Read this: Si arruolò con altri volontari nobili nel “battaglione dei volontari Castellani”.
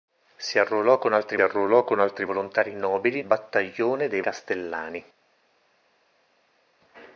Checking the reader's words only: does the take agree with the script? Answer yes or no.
no